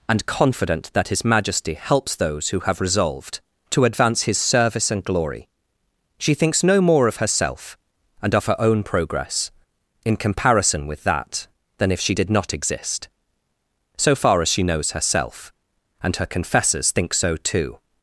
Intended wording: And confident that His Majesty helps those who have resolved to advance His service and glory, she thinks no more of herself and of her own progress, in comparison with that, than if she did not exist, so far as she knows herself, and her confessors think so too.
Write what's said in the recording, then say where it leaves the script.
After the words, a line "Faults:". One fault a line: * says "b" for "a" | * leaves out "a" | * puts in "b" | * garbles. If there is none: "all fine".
And confident that His Majesty helps those who have resolved to advance His service and glory, she thinks no more of herself and of her own progress, in comparison with that, than if she did not exist, so far as she knows herself, and her confessors think so too.
Faults:
all fine